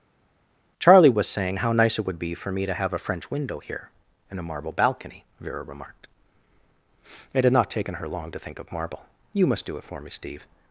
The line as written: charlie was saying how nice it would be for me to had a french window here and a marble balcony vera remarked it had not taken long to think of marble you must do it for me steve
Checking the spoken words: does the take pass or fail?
fail